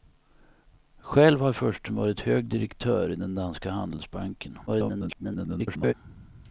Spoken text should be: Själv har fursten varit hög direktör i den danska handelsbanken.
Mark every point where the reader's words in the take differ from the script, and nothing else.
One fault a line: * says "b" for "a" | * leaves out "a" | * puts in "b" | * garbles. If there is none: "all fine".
* garbles